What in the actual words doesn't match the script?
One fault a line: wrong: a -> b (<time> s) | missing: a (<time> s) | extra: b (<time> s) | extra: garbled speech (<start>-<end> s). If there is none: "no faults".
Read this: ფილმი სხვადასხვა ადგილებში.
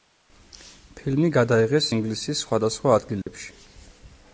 extra: გადაიღეს ინგლისის (1.4 s)